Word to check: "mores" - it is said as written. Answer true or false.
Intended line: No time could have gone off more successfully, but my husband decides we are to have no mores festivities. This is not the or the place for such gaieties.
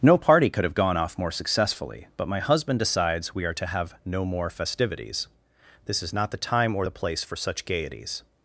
false